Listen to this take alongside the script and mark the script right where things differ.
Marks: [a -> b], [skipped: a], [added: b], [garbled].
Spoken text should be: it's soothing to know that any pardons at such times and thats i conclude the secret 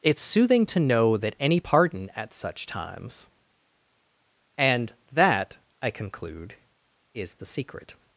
it's soothing to know that any [pardons -> pardon] at such times and [thats -> that] i conclude [added: is] the secret